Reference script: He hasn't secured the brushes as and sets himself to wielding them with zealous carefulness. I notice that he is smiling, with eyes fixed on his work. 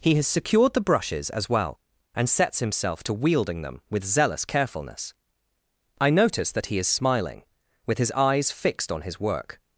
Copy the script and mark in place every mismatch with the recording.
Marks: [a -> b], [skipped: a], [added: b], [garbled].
He [hasn't -> has] secured the brushes as [added: well] and sets himself to wielding them with zealous carefulness. I notice that he is smiling, with [added: his] eyes fixed on his work.